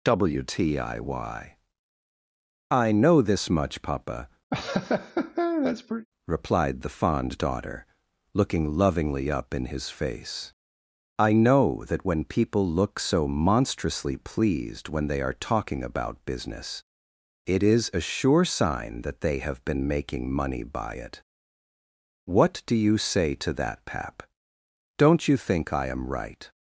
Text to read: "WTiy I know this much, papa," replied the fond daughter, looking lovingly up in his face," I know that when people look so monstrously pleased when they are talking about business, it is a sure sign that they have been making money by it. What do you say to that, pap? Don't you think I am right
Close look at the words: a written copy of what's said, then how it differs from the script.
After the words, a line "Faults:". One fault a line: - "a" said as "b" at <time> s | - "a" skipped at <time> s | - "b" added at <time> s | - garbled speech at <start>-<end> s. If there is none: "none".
"WTiy I know this much, papa," replied the fond daughter, looking lovingly up in his face," I know that when people look so monstrously pleased when they are talking about business, it is a sure sign that they have been making money by it. What do you say to that, pap? Don't you think I am right
Faults:
none